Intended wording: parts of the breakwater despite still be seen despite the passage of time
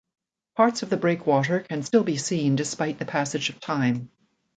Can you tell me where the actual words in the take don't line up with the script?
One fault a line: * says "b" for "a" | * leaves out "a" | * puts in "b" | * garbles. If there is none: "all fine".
* says "can" for "despite"